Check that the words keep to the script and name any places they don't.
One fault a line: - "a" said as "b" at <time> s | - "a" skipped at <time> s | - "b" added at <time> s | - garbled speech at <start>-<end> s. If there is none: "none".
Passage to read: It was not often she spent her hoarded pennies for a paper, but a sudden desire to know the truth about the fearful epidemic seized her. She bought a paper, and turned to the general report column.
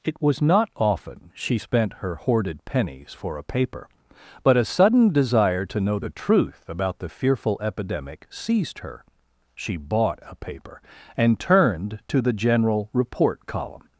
none